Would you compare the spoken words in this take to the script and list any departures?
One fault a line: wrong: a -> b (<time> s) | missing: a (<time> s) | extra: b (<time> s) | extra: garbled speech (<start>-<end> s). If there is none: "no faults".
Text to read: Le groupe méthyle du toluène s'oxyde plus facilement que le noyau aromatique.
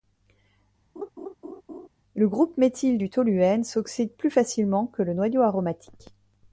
no faults